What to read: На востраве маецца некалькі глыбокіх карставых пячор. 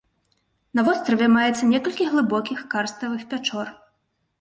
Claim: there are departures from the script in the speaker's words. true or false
false